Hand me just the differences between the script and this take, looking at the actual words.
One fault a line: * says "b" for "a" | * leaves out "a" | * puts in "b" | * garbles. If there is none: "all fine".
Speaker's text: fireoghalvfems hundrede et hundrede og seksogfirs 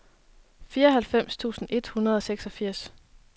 * says "tusind" for "hundrede"